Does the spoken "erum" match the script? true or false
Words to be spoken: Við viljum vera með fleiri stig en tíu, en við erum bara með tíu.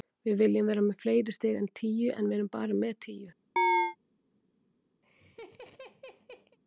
true